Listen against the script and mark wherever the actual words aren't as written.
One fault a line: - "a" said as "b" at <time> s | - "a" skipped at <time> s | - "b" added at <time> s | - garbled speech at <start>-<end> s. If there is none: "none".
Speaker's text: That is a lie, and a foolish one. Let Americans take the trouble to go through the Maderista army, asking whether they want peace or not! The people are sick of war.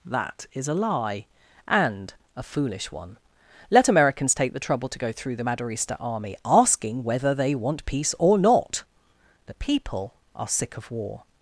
none